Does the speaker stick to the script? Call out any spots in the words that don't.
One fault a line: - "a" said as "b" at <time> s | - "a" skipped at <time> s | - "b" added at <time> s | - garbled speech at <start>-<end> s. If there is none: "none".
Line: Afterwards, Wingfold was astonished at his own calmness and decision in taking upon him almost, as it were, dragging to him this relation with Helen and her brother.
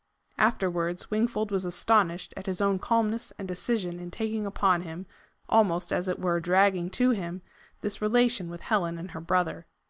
none